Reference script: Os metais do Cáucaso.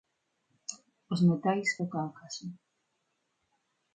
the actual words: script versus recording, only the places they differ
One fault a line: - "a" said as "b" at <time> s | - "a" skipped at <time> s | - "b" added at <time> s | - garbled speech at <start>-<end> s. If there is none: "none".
none